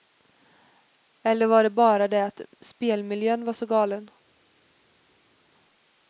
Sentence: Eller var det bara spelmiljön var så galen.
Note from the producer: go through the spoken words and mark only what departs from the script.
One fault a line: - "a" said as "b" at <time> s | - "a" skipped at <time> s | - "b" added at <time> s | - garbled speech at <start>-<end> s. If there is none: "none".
- "det att" added at 2.1 s